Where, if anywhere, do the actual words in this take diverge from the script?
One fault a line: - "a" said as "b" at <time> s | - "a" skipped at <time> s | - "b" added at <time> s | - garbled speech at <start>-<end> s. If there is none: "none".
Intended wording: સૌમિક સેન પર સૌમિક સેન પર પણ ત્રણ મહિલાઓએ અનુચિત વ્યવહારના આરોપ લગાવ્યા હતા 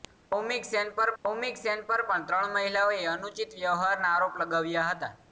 none